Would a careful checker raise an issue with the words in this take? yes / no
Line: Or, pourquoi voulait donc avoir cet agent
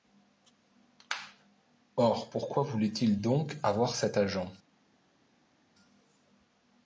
yes